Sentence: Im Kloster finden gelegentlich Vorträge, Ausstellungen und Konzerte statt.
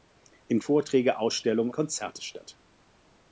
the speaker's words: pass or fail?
fail